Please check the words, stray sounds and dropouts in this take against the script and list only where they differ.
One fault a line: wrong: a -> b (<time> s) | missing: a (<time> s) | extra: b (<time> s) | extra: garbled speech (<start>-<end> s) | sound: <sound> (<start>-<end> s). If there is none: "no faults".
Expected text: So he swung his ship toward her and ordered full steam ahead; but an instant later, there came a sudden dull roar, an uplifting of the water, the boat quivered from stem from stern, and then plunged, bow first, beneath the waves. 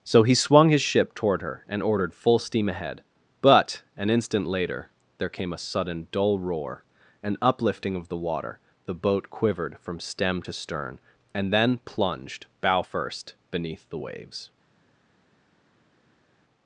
wrong: from -> to (10.4 s)